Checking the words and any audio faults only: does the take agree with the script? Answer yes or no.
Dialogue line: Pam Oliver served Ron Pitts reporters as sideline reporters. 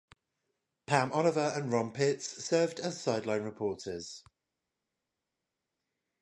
no